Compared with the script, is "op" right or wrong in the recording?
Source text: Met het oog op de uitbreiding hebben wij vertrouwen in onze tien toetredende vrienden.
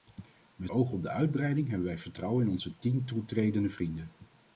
right